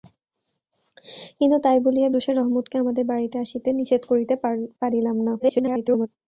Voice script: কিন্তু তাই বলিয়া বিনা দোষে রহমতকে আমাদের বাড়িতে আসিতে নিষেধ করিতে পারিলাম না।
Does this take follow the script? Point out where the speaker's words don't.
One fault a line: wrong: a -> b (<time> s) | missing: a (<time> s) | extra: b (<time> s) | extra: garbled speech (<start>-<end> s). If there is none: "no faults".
missing: বিনা (2.1 s)
extra: garbled speech (5.4-6.1 s)